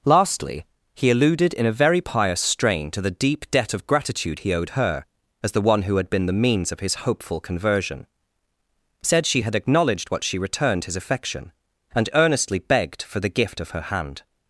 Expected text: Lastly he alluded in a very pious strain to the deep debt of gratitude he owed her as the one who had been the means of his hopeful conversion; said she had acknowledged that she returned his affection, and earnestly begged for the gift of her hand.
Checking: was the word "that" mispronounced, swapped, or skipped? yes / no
yes